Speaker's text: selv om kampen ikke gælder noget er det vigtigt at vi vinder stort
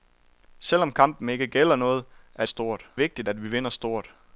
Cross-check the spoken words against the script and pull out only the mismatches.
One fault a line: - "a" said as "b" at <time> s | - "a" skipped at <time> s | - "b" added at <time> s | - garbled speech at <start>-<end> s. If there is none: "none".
- "det" said as "stort" at 2.5 s